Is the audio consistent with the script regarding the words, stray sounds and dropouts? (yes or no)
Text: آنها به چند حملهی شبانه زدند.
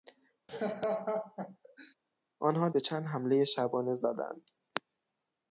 no